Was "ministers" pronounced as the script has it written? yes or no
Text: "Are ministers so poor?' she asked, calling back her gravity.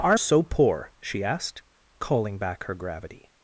no